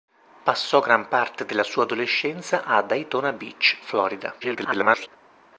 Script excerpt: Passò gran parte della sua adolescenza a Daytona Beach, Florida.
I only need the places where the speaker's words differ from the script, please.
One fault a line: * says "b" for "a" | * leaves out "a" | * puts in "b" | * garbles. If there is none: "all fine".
* garbles